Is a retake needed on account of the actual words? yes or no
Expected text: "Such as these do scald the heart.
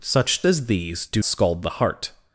no